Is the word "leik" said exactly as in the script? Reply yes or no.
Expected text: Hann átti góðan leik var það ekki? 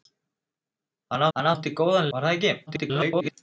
no